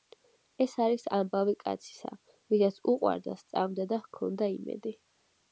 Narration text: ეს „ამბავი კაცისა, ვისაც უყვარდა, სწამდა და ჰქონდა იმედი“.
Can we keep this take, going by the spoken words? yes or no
no